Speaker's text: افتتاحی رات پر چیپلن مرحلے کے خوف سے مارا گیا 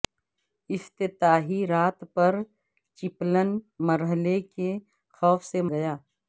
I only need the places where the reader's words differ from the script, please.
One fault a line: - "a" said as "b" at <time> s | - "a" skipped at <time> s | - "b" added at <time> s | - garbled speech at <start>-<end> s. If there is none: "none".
- "مارا" skipped at 5.6 s